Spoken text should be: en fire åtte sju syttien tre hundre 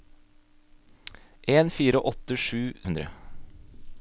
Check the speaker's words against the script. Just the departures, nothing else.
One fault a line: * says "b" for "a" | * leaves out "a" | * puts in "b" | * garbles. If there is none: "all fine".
* leaves out "syttien tre"